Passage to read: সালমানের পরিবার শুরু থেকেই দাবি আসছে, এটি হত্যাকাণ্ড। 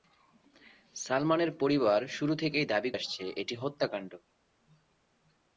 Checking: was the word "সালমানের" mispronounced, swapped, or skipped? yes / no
no